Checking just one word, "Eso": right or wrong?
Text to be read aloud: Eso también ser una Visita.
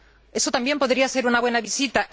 right